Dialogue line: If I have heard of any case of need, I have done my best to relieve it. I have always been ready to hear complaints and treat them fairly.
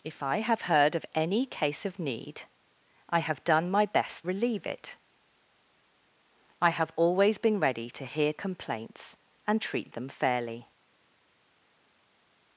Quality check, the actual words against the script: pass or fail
fail